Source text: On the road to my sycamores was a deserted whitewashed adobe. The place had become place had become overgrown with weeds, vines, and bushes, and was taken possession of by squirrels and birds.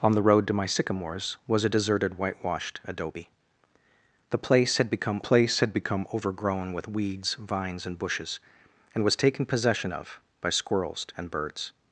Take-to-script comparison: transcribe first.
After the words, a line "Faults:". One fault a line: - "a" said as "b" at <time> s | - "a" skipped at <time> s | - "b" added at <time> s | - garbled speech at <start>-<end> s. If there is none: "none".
On the road to my sycamores was a deserted whitewashed adobe. The place had become place had become overgrown with weeds, vines, and bushes, and was taken possession of by squirrels and birds.
Faults:
none